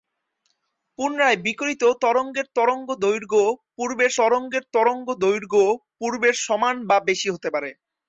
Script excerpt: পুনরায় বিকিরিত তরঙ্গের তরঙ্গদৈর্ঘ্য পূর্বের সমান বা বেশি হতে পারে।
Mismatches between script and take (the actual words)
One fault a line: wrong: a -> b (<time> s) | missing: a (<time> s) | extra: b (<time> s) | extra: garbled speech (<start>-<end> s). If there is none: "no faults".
extra: তরঙ্গের তরঙ্গদৈর্ঘ্য পূর্বের (4.2 s)